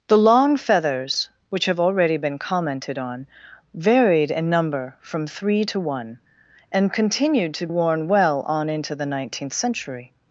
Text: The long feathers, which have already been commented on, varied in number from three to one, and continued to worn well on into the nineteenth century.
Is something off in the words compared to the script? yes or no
no